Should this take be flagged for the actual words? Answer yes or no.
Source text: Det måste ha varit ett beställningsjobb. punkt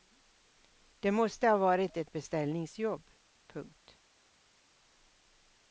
no